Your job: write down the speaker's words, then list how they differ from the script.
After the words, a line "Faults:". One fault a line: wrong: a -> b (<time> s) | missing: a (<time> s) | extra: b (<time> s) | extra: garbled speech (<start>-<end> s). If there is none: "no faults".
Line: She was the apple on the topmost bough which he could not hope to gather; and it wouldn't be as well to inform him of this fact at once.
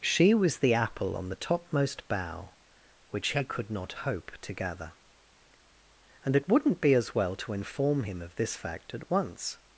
She was the apple on the topmost bough which he could not hope to gather; and it wouldn't be as well to inform him of this fact at once.
Faults:
no faults